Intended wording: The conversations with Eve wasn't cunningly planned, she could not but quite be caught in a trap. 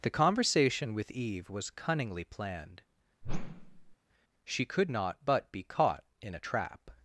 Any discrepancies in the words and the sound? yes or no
yes